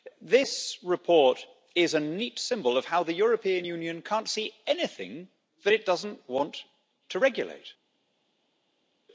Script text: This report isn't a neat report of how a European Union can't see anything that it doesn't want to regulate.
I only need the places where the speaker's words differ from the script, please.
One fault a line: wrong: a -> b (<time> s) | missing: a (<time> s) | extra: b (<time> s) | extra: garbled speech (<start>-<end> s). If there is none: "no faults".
wrong: isn't -> is (1.8 s)
wrong: report -> symbol (2.4 s)
wrong: a -> the (3.0 s)